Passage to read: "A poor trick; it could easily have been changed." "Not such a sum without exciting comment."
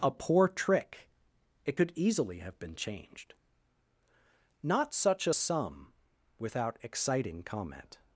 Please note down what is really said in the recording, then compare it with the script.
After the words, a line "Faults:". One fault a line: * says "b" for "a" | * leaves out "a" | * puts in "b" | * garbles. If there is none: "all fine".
"A poor trick; it could easily have been changed." "Not such a sum without exciting comment."
Faults:
all fine